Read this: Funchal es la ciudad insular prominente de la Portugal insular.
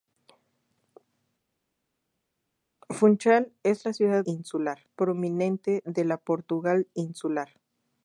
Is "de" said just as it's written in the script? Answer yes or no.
yes